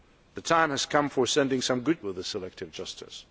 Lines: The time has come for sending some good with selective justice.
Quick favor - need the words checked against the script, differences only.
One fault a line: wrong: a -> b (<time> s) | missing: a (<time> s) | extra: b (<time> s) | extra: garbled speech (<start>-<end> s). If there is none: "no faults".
no faults